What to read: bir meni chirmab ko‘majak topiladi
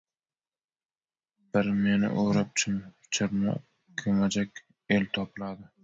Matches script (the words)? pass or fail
fail